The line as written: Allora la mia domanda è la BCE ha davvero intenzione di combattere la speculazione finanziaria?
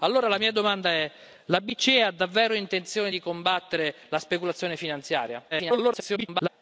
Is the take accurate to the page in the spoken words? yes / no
no